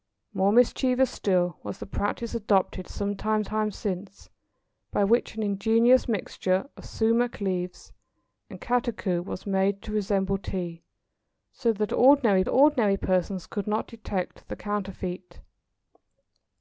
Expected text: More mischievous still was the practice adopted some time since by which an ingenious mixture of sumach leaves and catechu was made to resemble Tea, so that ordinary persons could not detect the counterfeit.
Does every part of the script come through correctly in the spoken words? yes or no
no